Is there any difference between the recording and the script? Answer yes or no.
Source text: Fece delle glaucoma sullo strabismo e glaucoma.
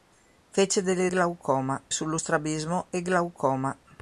no